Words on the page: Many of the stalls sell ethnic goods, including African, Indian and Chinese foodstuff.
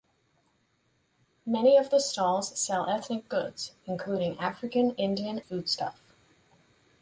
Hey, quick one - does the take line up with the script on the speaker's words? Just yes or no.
no